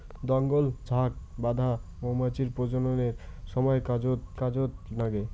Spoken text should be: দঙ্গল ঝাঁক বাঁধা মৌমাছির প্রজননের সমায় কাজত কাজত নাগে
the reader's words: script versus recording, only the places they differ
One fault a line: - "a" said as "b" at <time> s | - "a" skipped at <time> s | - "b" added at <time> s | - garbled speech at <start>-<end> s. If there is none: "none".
none